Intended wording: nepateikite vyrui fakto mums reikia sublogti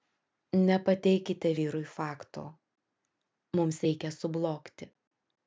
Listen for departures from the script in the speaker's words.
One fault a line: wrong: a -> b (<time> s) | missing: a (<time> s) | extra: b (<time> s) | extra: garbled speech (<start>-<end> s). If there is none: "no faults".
no faults